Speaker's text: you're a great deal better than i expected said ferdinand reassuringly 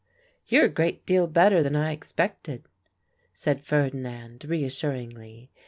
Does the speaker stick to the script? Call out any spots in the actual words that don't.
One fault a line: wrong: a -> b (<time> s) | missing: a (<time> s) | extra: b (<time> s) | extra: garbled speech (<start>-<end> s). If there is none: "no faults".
no faults